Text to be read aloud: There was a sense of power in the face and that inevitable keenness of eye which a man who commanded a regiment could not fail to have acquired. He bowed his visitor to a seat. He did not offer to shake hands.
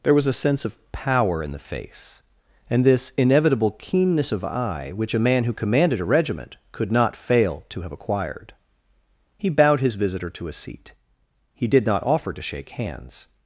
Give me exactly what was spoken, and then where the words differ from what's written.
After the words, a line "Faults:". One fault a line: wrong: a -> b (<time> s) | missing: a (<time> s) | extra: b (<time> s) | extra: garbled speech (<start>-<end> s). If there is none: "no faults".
There was a sense of power in the face and this inevitable keenness of eye which a man who commanded a regiment could not fail to have acquired. He bowed his visitor to a seat. He did not offer to shake hands.
Faults:
wrong: that -> this (2.9 s)